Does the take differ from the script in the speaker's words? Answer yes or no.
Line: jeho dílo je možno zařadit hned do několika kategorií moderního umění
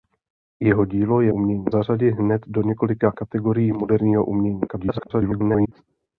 yes